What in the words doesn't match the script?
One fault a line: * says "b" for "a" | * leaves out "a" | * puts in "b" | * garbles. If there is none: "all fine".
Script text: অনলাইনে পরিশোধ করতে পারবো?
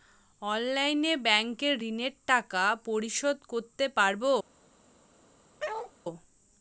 * puts in "ব্যাংকের ঋণের টাকা"